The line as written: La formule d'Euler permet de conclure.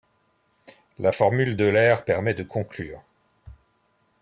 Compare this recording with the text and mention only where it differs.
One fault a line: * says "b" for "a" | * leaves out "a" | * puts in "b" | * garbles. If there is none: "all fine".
all fine